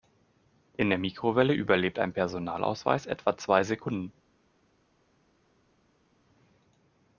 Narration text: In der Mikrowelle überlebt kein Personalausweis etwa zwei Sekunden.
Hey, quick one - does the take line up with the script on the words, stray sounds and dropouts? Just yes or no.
no